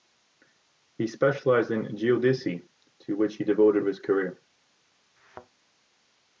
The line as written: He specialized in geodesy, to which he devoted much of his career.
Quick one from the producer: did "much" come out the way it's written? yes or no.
no